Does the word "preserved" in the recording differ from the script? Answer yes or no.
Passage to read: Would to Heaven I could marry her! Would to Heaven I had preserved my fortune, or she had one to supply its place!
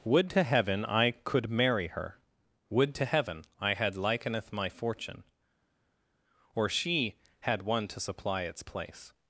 yes